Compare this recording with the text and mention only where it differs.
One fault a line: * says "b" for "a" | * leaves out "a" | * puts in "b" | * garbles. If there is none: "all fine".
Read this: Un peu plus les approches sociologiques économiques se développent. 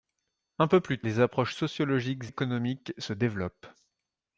all fine